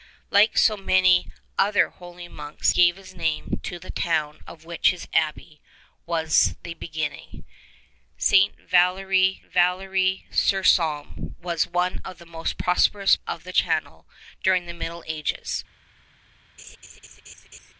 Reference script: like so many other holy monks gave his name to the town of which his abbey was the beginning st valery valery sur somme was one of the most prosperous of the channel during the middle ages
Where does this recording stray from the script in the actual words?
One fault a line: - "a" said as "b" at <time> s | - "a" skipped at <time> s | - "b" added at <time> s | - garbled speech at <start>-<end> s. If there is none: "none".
none